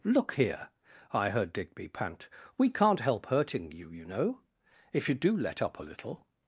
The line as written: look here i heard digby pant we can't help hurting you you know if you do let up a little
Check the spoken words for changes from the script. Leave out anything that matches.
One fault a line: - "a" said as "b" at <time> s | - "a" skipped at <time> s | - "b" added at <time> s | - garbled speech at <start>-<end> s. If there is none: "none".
none